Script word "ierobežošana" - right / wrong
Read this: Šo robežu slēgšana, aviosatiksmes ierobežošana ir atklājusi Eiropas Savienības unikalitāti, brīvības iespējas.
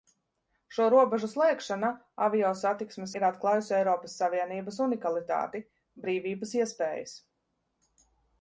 wrong